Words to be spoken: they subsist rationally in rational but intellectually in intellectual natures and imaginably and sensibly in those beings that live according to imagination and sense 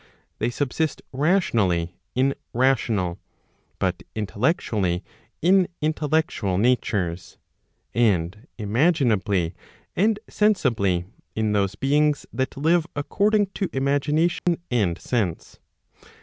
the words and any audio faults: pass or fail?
fail